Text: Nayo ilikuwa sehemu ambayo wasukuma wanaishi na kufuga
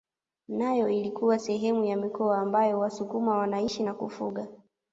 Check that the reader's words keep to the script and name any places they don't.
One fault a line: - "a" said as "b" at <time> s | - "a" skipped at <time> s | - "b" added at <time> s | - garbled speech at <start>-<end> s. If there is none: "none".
- "ya mikoa" added at 1.9 s